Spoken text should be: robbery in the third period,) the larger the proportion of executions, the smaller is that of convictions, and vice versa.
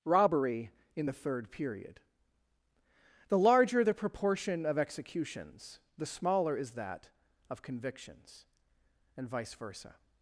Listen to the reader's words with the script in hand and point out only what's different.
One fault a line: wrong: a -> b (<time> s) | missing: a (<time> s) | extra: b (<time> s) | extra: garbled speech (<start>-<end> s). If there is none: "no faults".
no faults